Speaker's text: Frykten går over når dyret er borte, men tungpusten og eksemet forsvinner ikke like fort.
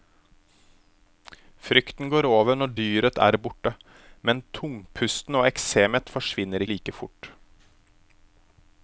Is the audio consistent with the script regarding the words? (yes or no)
no